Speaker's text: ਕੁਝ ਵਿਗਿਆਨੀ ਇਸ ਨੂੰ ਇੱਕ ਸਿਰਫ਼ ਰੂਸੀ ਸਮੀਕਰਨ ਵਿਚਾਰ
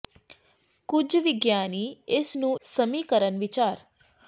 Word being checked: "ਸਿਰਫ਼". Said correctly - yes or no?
no